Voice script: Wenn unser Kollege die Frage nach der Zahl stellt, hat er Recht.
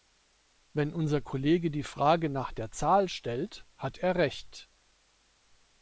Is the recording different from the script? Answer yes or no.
no